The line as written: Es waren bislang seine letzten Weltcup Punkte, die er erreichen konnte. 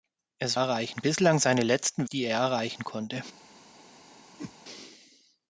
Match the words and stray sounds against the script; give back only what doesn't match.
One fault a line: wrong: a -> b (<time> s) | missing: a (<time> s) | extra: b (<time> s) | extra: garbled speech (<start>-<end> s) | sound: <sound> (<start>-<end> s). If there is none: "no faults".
wrong: waren -> erreichen (0.5 s)
missing: Weltcup Punkte (2.1 s)
sound: whoosh (4.4-4.5 s)